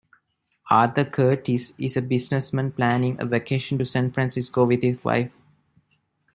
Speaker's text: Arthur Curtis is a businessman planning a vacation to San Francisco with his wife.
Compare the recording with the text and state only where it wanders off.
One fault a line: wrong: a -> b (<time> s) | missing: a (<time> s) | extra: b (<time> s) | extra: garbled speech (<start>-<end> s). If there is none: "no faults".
no faults